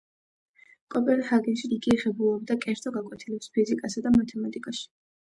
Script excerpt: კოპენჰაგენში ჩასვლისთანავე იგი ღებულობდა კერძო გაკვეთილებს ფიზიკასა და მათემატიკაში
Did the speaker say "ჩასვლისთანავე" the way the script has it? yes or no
no